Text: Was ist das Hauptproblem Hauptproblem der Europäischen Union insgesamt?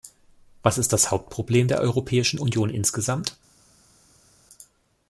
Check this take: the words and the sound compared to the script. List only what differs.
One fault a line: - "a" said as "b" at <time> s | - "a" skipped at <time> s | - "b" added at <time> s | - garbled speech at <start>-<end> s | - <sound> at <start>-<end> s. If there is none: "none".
- "Hauptproblem" skipped at 1.7 s